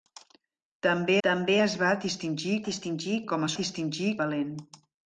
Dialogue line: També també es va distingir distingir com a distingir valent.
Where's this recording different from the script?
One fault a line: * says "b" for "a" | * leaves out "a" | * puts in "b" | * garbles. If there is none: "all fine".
all fine